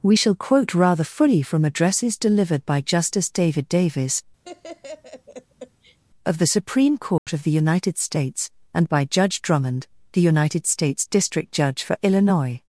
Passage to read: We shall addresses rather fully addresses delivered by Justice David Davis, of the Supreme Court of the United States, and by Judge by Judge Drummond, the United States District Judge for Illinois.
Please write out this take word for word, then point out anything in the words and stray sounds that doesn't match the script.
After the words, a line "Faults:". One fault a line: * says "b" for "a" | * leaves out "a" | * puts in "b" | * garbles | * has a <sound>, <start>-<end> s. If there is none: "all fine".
We shall quote rather fully from addresses delivered by Justice David Davis, of the Supreme Court of the United States, and by Judge Drummond, the United States District Judge for Illinois.
Faults:
* says "quote" for "addresses"
* puts in "from"
* has a laugh, 4.4-6.0 s
* has a dropout, 7.2-7.3 s
* leaves out "by Judge"